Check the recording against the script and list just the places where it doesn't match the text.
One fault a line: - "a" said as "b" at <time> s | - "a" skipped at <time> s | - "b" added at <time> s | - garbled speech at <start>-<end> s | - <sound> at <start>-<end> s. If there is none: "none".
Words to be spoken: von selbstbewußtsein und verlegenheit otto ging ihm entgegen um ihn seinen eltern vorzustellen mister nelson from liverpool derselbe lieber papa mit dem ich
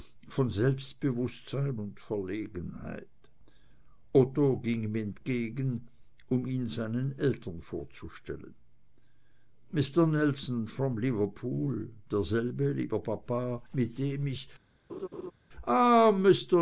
- laugh at 14.9-15.3 s